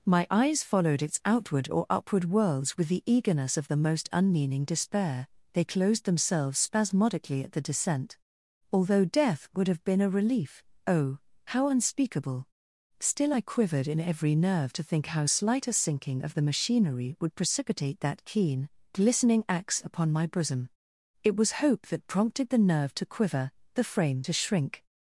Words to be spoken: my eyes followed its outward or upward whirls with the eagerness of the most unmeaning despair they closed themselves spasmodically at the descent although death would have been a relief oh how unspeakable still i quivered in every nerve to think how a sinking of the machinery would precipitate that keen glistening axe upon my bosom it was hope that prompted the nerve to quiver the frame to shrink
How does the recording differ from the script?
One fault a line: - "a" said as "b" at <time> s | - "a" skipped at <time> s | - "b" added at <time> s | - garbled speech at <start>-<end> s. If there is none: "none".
- "slight" added at 15.2 s